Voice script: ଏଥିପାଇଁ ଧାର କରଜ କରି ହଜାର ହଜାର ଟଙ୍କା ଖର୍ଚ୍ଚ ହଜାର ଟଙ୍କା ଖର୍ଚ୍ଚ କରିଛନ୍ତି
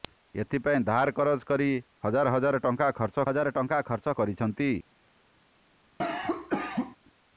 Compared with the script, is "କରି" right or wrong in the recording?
right